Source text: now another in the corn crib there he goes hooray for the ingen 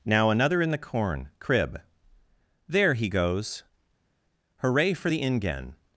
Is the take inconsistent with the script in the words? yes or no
no